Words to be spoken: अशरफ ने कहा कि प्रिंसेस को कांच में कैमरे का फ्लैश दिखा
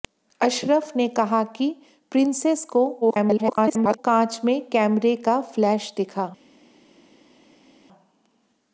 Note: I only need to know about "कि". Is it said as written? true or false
true